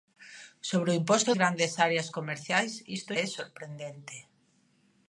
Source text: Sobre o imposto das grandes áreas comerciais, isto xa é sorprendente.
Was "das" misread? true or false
true